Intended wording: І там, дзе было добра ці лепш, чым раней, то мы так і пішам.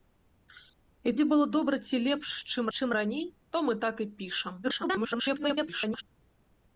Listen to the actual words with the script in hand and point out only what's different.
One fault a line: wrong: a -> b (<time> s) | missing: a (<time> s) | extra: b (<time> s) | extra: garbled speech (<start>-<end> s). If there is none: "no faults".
missing: там (1.1 s)
extra: чым (2.8 s)
extra: garbled speech (4.6-6.0 s)